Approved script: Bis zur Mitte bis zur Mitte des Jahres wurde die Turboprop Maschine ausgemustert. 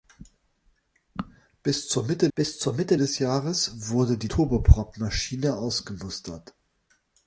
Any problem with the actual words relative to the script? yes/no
no